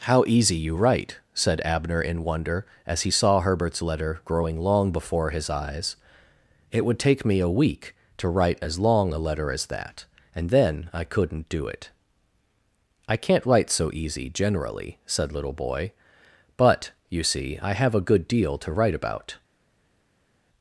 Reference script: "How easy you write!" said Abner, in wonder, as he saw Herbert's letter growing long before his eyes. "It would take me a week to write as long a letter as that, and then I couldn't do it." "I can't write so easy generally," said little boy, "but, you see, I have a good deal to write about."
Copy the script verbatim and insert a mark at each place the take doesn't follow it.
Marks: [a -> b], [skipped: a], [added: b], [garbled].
"How easy you write!" said Abner, in wonder, as he saw Herbert's letter growing long before his eyes. "It would take me a week to write as long a letter as that, and then I couldn't do it." "I can't write so easy generally," said little boy, "but, you see, I have a good deal to write about."